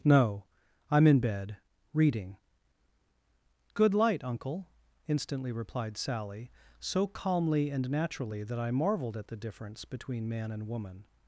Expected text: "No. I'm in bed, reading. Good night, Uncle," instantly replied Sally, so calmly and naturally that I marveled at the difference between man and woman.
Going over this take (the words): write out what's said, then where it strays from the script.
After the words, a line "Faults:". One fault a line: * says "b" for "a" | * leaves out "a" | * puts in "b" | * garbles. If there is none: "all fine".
"No. I'm in bed, reading. Good light, Uncle," instantly replied Sally, so calmly and naturally that I marveled at the difference between man and woman.
Faults:
* says "light" for "night"